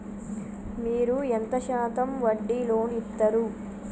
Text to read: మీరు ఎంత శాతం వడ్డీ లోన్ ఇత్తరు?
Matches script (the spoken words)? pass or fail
pass